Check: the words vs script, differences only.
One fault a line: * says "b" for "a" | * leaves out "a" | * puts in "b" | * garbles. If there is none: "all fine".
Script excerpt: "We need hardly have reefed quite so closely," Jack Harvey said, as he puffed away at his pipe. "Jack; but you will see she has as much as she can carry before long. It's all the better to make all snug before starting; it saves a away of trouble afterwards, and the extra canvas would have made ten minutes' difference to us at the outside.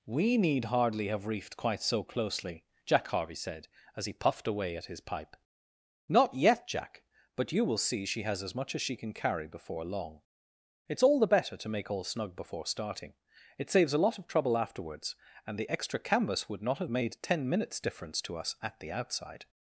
* puts in "Not yet"
* says "lot" for "away"
* puts in "not"